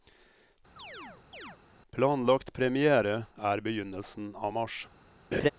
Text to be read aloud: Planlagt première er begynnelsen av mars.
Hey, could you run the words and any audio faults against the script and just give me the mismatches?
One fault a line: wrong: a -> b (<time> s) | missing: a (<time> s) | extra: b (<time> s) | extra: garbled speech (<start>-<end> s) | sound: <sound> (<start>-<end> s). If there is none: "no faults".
sound: chirp (0.8-1.6 s)
sound: laugh (5.3-5.5 s)